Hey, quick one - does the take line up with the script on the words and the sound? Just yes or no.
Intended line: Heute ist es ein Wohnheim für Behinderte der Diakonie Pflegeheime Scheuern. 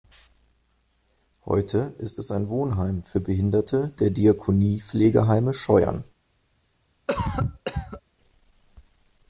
no